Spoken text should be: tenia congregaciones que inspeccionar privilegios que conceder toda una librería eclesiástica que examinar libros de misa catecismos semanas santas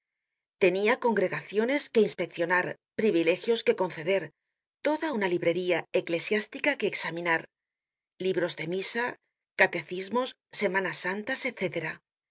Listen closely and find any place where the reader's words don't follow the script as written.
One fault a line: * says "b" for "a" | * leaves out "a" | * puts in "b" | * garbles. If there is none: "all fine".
all fine